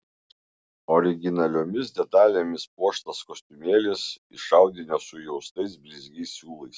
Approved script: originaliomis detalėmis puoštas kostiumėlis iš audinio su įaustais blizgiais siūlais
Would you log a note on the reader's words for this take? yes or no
no